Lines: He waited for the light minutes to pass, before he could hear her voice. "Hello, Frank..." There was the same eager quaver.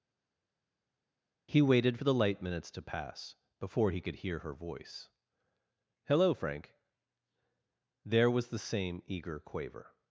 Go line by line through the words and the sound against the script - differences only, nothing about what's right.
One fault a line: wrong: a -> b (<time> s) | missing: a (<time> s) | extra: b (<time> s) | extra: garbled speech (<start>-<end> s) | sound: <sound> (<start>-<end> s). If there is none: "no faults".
no faults